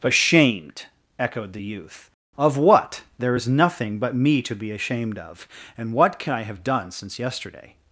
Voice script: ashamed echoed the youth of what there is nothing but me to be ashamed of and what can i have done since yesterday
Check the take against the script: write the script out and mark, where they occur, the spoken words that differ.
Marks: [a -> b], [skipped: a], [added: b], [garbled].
ashamed echoed the youth of what there is nothing but me to be ashamed of and what can i have done since yesterday